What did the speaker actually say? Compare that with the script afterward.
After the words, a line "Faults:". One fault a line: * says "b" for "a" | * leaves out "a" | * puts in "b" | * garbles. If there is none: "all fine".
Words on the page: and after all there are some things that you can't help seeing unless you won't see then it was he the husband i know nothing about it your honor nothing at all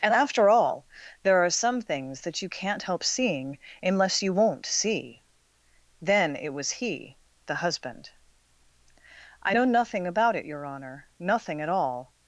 and after all there are some things that you can't help seeing unless you won't see then it was he the husband i know nothing about it your honor nothing at all
Faults:
all fine